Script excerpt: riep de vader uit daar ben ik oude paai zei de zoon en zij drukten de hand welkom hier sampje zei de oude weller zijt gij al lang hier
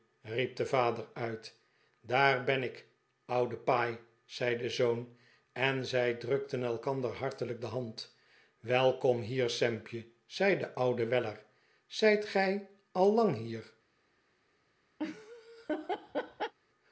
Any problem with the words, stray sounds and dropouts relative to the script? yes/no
yes